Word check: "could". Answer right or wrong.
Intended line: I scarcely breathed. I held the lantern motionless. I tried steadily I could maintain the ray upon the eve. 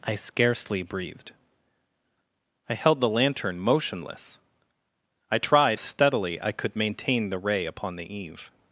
right